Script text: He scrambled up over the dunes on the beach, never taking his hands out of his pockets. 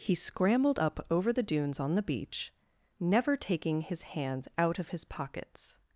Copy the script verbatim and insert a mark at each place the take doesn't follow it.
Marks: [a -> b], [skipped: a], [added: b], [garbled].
He scrambled up over the dunes on the beach, never taking his hands out of his pockets.